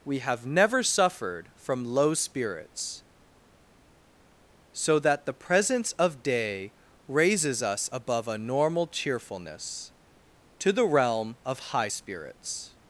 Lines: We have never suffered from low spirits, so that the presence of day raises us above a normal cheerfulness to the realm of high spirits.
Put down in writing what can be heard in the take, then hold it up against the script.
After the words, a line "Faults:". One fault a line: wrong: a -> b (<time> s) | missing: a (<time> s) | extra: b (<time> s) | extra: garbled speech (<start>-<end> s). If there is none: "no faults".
We have never suffered from low spirits, so that the presence of day raises us above a normal cheerfulness to the realm of high spirits.
Faults:
no faults